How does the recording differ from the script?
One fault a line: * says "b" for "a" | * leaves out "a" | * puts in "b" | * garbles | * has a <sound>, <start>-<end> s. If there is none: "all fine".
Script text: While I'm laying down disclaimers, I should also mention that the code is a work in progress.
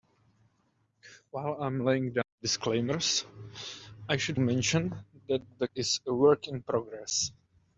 * leaves out "also"
* leaves out "code"